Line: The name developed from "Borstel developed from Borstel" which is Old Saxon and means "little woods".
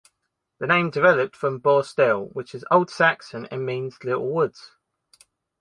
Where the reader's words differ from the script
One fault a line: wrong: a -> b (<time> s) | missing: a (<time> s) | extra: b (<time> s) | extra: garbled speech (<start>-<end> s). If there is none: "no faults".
missing: developed from Borstel (2.3 s)